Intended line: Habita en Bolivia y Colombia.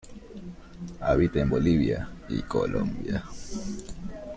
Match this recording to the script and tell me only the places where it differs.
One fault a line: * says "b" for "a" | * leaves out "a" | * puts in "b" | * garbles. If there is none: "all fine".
all fine